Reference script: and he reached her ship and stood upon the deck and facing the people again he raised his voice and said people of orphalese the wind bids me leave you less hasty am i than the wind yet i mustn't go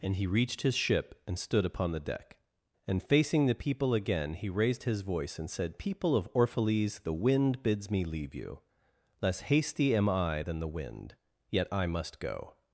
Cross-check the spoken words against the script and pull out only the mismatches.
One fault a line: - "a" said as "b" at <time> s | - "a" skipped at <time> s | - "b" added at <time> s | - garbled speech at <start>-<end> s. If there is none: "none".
- "her" said as "his" at 0.6 s
- "mustn't" said as "must" at 11.9 s